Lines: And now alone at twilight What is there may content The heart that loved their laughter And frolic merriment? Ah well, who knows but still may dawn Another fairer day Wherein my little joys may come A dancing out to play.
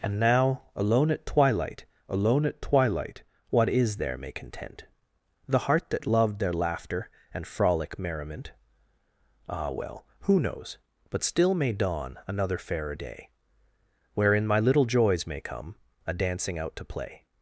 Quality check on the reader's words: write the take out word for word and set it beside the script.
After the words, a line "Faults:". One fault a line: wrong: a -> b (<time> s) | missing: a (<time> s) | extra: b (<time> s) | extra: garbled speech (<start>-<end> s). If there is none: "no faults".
And now alone at twilight alone at twilight What is there may content The heart that loved their laughter And frolic merriment? Ah well, who knows but still may dawn Another fairer day Wherein my little joys may come A dancing out to play.
Faults:
extra: alone at twilight (2.1 s)